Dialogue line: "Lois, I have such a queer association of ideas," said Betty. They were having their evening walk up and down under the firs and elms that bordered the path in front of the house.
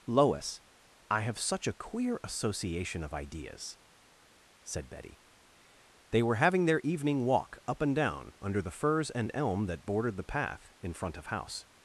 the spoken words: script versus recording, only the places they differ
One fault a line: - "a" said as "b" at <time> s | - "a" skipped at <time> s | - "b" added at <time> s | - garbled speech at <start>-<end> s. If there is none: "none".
- "elms" said as "elm" at 9.3 s
- "the" skipped at 11.3 s